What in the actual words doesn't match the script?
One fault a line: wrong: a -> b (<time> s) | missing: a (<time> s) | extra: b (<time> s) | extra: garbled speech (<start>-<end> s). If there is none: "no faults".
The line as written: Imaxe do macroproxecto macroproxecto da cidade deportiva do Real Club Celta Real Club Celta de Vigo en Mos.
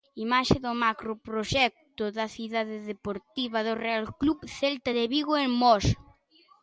missing: macroproxecto (2.0 s)
missing: Real Club Celta (4.9 s)